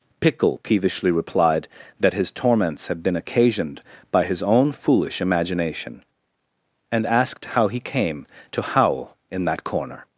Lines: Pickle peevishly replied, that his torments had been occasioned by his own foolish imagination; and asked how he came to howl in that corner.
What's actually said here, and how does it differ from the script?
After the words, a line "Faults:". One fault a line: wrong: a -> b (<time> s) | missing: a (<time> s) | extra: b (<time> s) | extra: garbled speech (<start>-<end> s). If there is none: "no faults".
Pickle peevishly replied, that his torments had been occasioned by his own foolish imagination; and asked how he came to howl in that corner.
Faults:
no faults